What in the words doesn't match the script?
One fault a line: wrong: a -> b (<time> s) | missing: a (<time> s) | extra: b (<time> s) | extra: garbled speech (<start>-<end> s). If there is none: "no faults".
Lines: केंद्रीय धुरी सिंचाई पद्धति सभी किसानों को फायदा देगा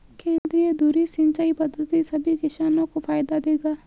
no faults